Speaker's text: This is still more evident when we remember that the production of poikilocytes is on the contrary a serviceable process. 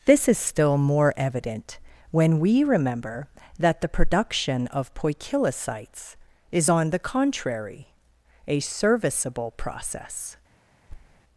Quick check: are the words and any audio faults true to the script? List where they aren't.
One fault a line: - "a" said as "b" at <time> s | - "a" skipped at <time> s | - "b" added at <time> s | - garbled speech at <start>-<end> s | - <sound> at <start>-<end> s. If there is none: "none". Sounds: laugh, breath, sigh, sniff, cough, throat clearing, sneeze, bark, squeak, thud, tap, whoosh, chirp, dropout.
- thud at 10.9-11.2 s